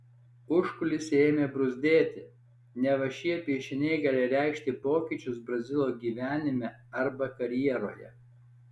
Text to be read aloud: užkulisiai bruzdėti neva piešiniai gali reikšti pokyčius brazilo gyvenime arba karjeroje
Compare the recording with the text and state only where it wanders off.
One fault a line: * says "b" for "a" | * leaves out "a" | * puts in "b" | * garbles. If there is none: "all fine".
* puts in "ėmė"
* puts in "šie"